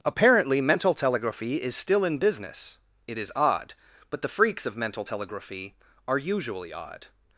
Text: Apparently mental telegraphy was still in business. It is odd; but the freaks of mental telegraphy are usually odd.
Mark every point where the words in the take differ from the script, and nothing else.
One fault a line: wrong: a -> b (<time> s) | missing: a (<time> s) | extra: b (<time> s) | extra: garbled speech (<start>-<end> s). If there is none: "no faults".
wrong: was -> is (1.6 s)